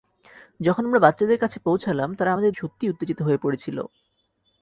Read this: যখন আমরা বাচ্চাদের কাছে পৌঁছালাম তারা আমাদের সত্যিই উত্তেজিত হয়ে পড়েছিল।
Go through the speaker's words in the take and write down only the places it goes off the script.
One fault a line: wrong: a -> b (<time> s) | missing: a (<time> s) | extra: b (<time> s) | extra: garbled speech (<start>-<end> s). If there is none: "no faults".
no faults